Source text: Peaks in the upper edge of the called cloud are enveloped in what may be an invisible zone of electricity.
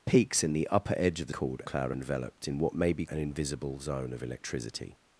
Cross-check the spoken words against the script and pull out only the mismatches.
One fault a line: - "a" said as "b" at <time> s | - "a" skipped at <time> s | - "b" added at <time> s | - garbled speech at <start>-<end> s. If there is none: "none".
none